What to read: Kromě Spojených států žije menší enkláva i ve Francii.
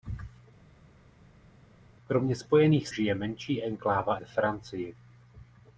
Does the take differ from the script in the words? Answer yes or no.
yes